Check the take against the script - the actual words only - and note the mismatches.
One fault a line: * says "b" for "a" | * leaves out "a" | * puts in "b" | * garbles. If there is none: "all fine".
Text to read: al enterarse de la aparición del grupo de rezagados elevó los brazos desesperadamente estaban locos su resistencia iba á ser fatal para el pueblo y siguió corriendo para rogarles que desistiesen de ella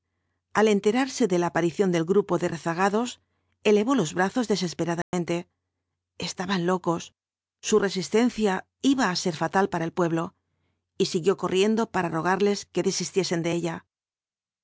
all fine